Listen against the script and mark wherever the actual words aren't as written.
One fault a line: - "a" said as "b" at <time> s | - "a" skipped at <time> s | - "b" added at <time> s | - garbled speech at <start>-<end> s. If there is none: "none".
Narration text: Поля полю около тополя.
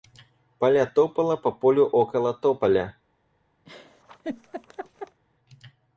- "топала по" added at 0.9 s